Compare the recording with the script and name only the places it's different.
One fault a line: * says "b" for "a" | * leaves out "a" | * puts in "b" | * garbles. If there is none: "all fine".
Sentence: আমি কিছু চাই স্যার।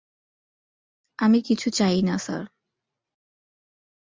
* puts in "না"